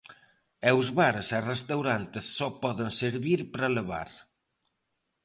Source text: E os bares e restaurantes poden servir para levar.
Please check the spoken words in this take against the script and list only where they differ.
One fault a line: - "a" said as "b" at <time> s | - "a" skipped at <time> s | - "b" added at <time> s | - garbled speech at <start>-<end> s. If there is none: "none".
- "só" added at 2.4 s